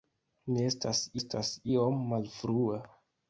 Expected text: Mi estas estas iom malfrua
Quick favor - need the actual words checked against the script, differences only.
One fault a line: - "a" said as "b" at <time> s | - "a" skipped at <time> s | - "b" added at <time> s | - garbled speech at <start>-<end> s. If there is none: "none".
none